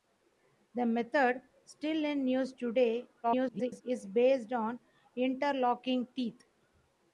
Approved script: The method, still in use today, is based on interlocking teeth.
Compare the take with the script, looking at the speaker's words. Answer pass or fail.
fail